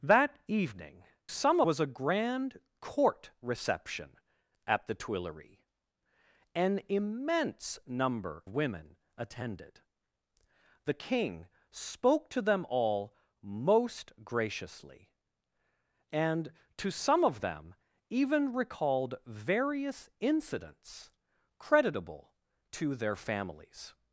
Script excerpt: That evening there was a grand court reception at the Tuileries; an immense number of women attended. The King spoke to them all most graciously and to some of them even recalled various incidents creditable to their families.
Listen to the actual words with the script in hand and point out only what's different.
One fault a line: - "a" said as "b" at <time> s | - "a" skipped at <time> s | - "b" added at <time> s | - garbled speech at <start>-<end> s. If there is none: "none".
- "there" said as "some" at 1.3 s
- "of" skipped at 8.4 s